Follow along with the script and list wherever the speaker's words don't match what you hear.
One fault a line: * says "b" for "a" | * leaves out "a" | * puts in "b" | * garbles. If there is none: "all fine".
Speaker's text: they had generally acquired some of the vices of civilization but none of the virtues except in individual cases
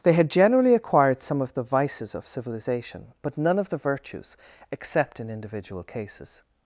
all fine